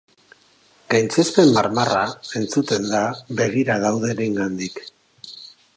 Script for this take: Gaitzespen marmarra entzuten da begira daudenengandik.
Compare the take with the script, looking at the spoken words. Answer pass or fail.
pass